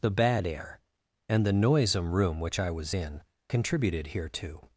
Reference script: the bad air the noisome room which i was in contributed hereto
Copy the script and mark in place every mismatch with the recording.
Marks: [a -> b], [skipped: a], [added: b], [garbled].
the bad air [added: and] the noisome room which i was in contributed hereto